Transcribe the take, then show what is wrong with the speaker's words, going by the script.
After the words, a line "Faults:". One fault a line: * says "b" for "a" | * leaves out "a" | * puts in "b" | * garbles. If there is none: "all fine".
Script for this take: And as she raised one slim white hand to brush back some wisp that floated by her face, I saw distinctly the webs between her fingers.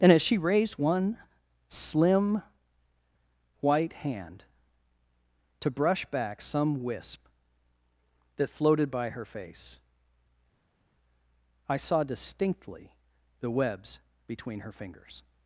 And as she raised one slim white hand to brush back some wisp that floated by her face, I saw distinctly the webs between her fingers.
Faults:
all fine